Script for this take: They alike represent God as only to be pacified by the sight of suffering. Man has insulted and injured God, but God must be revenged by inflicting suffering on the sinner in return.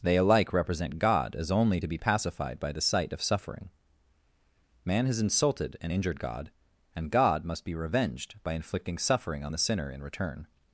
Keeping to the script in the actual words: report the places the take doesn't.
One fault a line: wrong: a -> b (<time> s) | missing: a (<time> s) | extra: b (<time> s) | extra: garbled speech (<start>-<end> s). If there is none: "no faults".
wrong: but -> and (6.9 s)